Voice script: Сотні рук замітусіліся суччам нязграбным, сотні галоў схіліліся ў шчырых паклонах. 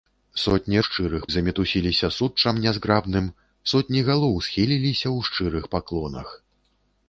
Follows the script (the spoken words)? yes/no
no